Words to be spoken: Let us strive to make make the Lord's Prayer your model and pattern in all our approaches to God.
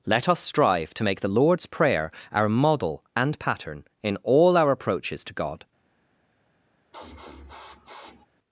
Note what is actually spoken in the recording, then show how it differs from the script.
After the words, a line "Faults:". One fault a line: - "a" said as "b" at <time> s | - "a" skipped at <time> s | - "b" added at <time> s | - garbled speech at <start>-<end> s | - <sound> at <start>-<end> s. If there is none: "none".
Let us strive to make the Lord's Prayer our model and pattern in all our approaches to God.
Faults:
- "make" skipped at 1.2 s
- "your" said as "our" at 2.3 s
- sniff at 6.9-8.3 s